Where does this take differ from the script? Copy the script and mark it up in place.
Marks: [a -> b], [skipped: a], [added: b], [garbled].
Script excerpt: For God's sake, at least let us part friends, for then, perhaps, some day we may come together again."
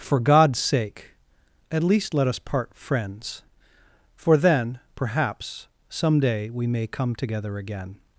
For God's sake, at least let us part friends, for then, perhaps, some day we may come together again."